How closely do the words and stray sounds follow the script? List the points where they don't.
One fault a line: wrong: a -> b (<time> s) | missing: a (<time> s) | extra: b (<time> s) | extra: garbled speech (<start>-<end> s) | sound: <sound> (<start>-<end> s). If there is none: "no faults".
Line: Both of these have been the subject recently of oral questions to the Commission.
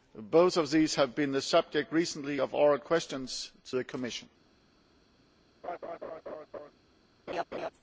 sound: laugh (5.6-6.7 s)
sound: laugh (7.3-7.7 s)